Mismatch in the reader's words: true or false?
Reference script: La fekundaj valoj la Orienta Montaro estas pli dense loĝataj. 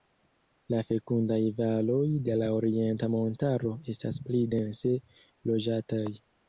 true